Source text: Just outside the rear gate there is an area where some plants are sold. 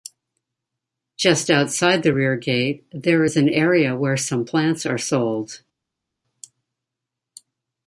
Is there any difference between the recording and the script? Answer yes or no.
no